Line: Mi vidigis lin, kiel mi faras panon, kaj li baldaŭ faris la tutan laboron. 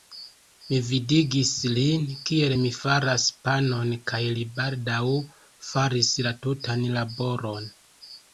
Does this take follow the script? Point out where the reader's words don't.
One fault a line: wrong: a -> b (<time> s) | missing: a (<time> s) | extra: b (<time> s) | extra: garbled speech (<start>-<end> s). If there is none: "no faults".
no faults